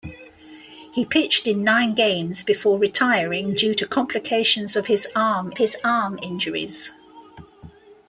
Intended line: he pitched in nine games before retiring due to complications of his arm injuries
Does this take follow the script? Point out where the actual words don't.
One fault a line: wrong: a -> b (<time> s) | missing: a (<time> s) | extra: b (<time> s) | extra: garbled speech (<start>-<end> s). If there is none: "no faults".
extra: his arm (5.6 s)